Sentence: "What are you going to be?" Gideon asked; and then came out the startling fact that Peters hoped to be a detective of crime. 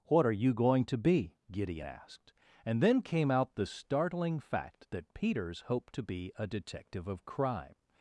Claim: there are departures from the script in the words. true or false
false